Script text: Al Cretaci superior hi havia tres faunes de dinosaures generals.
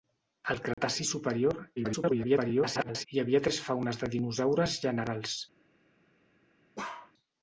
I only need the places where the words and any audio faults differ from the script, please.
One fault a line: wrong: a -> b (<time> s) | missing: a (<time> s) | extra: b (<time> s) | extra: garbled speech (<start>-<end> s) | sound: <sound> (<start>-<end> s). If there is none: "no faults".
sound: dropout (0.7-0.8 s)
extra: garbled speech (1.8-3.1 s)
sound: bark (6.8-7.1 s)